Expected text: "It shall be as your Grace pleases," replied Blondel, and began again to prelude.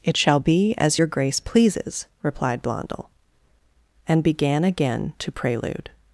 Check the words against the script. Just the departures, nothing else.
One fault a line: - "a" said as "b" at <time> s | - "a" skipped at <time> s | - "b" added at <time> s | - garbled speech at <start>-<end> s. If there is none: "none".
none